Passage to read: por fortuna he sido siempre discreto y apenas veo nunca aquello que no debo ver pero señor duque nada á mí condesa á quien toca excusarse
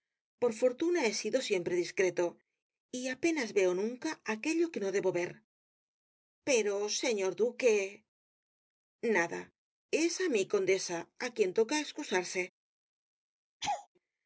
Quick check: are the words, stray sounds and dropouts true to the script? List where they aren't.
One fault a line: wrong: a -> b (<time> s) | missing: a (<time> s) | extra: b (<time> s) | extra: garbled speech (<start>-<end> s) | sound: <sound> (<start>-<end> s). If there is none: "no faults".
extra: es (10.0 s)
sound: laugh (13.6-13.9 s)